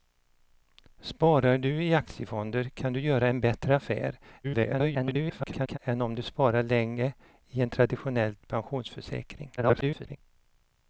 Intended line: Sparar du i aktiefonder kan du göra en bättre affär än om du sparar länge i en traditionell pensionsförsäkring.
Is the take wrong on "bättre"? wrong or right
right